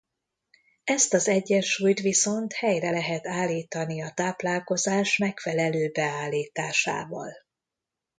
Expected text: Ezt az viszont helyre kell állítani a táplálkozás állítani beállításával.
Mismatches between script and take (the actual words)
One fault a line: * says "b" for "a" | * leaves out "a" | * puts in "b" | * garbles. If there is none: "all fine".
* puts in "egyensúlyt"
* says "lehet" for "kell"
* says "megfelelő" for "állítani"